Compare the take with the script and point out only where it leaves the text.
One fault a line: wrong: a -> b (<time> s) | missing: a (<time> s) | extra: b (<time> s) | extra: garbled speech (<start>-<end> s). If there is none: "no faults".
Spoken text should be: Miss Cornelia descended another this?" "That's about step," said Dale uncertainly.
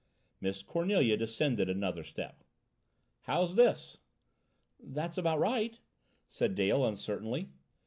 extra: step How's (2.0 s)
wrong: step -> right (5.4 s)